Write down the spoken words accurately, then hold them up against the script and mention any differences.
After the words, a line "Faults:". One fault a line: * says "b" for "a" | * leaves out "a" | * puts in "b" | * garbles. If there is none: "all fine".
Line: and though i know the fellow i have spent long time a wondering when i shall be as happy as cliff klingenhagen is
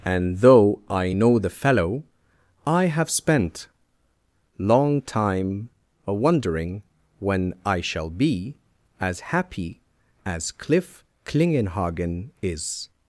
and though i know the fellow i have spent long time a wondering when i shall be as happy as cliff klingenhagen is
Faults:
all fine